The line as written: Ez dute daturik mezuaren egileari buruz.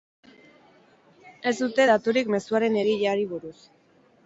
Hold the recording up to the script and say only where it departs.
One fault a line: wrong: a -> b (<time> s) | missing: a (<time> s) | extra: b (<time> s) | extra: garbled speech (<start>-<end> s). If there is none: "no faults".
no faults